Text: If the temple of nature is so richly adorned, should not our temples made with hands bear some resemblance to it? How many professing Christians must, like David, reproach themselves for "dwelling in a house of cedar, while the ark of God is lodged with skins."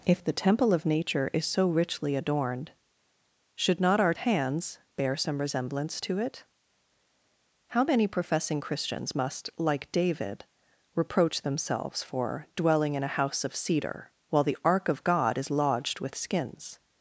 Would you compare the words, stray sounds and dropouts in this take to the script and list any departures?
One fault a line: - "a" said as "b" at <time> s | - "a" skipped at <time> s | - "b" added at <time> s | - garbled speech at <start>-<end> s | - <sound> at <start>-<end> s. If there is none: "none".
- "temples made with" skipped at 4.1 s